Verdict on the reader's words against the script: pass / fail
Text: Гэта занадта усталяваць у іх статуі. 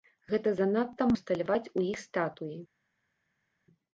pass